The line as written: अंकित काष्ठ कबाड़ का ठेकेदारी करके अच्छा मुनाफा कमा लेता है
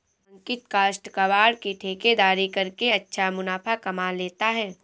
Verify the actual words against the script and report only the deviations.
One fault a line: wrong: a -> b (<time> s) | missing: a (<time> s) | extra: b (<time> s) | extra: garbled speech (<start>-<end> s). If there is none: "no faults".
wrong: का -> की (1.6 s)